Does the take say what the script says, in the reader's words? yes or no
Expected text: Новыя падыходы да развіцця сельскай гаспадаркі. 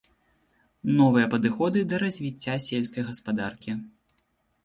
yes